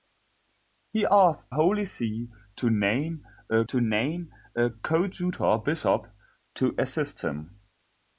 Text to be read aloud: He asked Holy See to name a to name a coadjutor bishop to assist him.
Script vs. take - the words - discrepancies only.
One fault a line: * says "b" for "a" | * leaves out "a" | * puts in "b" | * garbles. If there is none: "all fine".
all fine